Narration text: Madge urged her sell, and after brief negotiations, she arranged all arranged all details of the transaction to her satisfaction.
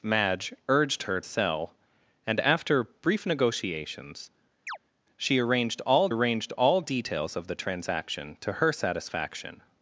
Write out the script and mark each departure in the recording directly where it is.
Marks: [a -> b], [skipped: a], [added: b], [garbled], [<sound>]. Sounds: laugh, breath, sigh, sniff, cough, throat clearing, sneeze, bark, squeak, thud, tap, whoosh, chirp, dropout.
Madge urged her sell, and after brief negotiations, [chirp] she arranged all arranged all details of the transaction to her satisfaction.